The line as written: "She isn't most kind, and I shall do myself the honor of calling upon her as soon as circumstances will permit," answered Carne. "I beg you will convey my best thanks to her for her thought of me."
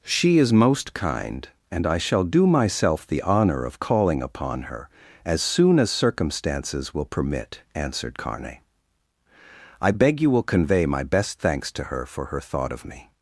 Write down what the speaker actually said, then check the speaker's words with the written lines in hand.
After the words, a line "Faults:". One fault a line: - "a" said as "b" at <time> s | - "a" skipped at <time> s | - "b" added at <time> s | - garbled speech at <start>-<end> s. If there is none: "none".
"She is most kind, and I shall do myself the honor of calling upon her as soon as circumstances will permit," answered Carne. "I beg you will convey my best thanks to her for her thought of me."
Faults:
- "isn't" said as "is" at 0.4 s